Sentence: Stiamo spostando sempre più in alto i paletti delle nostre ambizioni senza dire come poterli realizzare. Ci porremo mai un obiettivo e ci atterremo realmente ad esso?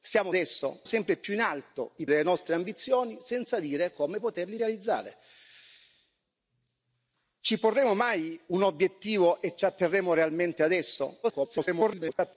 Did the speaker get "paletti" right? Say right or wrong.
wrong